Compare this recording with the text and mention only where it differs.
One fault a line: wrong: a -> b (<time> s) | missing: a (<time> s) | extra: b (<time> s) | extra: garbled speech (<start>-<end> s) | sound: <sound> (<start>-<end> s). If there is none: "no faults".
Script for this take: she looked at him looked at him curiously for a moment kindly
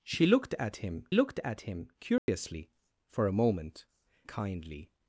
sound: dropout (2.2-2.3 s)